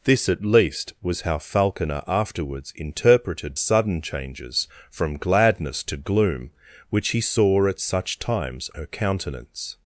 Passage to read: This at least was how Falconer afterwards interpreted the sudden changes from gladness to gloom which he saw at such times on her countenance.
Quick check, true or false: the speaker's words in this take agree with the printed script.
false